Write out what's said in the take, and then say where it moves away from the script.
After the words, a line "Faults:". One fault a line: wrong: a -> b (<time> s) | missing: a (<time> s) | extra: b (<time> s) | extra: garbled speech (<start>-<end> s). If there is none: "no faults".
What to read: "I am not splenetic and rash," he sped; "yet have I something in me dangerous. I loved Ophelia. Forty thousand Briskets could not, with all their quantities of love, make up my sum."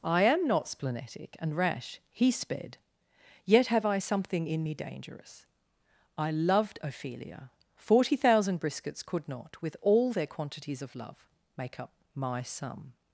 "I am not splenetic and rash," he sped; "yet have I something in me dangerous. I loved Ophelia. Forty thousand Briskets could not, with all their quantities of love, make up my sum."
Faults:
no faults